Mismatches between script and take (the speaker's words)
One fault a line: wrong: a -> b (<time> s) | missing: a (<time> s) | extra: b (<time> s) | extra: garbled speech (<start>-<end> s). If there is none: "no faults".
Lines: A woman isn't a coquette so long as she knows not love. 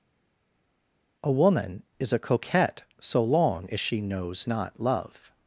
wrong: isn't -> is (2.0 s)